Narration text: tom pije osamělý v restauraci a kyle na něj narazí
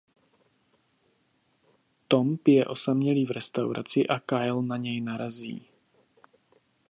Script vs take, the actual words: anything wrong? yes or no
no